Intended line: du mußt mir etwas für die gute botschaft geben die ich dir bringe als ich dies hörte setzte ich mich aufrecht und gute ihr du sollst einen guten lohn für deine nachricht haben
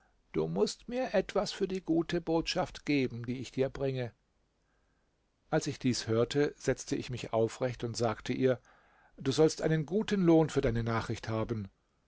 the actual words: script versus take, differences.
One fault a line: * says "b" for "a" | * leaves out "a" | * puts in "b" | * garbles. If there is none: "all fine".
* says "sagte" for "gute"